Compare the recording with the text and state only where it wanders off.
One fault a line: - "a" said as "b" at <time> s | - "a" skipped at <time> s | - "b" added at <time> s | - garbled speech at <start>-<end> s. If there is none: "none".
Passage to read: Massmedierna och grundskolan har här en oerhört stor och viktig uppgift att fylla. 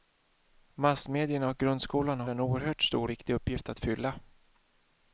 - "här" skipped at 2.3 s
- "och" skipped at 3.1 s